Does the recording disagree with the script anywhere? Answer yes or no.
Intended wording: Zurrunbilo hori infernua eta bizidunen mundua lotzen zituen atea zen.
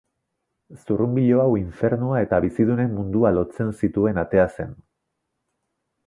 yes